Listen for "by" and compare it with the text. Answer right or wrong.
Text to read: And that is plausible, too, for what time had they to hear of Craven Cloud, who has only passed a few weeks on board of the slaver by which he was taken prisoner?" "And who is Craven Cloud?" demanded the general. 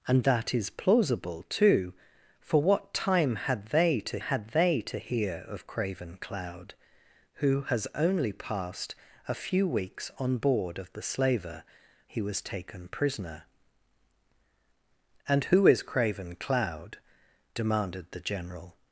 wrong